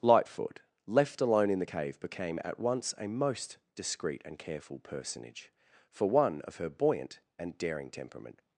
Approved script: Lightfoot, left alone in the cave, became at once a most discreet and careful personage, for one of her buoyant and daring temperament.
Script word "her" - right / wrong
right